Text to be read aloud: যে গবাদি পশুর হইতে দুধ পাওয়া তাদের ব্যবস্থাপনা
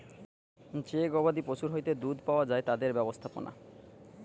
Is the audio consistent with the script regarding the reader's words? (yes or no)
no